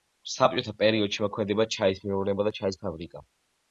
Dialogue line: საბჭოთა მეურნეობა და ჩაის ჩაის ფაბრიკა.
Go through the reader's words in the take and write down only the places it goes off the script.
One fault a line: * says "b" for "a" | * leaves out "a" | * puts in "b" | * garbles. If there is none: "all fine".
* puts in "პერიოდში მოქმედებდა ჩაის"
* leaves out "ჩაის"